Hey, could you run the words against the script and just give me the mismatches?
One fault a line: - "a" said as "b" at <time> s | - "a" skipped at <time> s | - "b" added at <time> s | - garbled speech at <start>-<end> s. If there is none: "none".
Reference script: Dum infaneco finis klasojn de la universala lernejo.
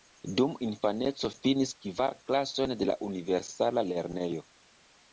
- "kvar" added at 1.9 s